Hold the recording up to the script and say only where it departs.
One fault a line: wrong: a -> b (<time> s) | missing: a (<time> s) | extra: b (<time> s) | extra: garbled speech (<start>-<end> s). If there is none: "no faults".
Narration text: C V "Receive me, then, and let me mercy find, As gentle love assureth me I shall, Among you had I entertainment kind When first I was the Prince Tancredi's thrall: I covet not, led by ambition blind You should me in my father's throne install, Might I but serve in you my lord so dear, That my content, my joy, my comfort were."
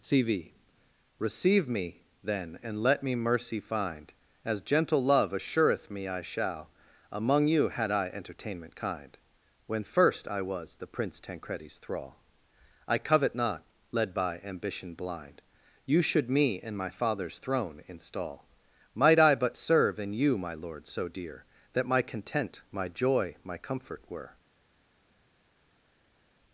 no faults